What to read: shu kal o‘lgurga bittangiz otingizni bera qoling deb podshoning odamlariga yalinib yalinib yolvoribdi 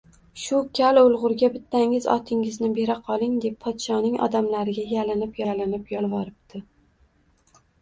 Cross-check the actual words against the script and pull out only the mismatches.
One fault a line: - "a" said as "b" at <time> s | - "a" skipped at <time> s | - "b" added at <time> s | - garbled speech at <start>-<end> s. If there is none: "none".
none